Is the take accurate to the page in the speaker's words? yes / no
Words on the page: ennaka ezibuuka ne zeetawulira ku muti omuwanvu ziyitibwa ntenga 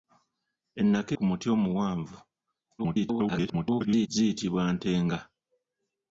no